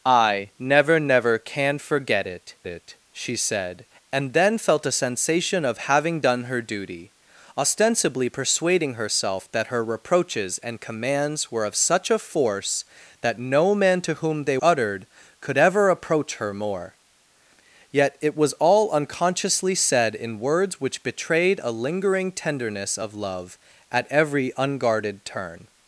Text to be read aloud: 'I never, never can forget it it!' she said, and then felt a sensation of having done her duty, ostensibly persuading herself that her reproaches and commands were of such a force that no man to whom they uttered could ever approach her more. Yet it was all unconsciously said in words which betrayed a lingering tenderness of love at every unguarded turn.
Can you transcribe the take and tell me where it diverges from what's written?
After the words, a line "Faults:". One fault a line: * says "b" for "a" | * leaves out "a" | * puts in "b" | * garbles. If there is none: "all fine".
'I never, never can forget it it!' she said, and then felt a sensation of having done her duty, ostensibly persuading herself that her reproaches and commands were of such a force that no man to whom they uttered could ever approach her more. Yet it was all unconsciously said in words which betrayed a lingering tenderness of love at every unguarded turn.
Faults:
all fine